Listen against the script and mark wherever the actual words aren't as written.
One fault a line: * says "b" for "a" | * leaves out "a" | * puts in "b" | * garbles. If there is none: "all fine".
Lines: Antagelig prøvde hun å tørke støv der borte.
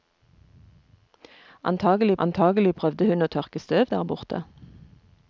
* puts in "antagelig"